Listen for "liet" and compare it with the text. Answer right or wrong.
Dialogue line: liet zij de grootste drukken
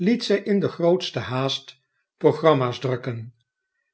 right